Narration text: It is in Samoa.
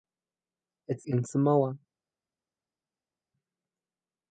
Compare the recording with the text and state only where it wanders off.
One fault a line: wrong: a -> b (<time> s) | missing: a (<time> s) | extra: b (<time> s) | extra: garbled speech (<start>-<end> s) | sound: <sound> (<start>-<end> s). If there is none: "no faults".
no faults